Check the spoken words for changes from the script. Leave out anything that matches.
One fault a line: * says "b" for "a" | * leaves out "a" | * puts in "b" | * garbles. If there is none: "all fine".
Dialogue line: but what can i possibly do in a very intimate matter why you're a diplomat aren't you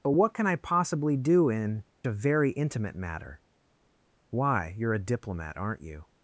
all fine